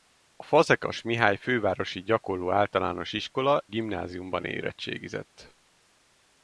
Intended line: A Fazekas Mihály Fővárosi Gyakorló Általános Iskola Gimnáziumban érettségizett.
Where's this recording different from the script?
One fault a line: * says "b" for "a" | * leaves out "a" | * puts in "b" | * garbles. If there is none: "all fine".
all fine